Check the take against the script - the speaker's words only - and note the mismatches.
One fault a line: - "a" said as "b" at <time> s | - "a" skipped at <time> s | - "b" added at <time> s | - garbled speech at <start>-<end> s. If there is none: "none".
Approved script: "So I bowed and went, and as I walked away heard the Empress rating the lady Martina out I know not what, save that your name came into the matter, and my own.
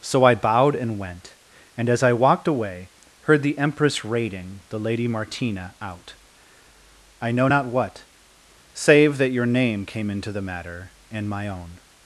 none